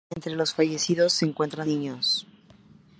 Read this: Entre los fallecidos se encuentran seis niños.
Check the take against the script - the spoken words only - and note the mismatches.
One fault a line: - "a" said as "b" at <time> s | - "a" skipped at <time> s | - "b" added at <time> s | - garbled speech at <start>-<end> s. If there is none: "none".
- "seis" skipped at 1.7 s